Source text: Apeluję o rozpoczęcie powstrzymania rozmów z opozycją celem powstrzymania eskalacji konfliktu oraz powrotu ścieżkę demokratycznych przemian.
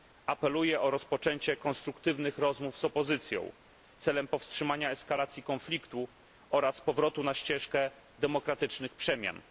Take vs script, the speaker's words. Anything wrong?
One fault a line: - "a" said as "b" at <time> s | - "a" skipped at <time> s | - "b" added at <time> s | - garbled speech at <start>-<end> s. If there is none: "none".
- "powstrzymania" said as "konstruktywnych" at 1.6 s
- "na" added at 7.2 s